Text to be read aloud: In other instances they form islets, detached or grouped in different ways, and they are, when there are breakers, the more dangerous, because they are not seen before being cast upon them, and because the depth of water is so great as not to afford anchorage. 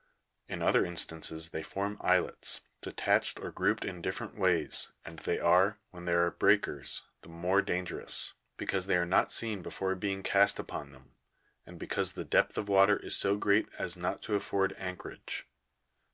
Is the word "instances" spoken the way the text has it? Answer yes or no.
yes